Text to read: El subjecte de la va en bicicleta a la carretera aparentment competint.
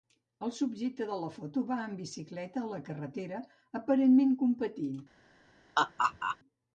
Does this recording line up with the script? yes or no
no